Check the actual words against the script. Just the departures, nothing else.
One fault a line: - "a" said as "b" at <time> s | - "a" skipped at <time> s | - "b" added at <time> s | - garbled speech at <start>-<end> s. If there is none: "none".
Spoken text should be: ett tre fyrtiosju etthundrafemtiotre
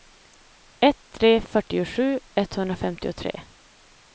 none